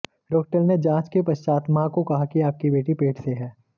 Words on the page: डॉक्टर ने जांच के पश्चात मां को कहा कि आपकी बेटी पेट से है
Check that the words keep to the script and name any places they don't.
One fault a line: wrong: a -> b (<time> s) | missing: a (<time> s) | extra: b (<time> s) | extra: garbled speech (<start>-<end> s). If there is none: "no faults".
no faults